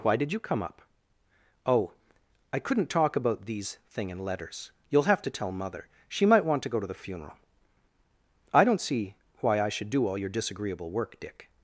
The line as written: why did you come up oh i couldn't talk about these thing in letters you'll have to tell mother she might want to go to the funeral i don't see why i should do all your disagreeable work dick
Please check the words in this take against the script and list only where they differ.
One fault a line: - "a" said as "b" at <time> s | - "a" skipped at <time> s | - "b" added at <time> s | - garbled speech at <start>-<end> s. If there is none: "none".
none